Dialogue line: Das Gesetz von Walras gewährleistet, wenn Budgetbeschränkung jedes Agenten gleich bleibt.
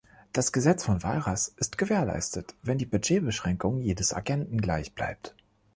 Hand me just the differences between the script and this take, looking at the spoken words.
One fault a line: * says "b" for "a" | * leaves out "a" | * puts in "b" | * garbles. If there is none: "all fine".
* puts in "ist"
* puts in "die"